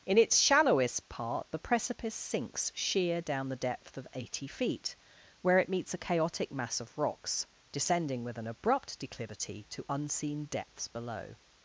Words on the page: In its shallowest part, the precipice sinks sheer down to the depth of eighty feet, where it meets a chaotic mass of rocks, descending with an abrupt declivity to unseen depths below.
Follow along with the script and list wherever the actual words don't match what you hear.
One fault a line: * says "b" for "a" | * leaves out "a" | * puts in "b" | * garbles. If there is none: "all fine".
* leaves out "to"